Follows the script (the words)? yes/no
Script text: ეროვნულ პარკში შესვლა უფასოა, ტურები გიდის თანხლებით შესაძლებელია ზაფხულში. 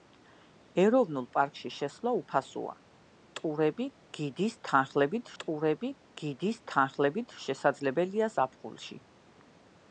no